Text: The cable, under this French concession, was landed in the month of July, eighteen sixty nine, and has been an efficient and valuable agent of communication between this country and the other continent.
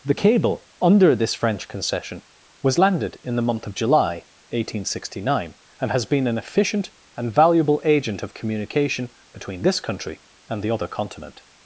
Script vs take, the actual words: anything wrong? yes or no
no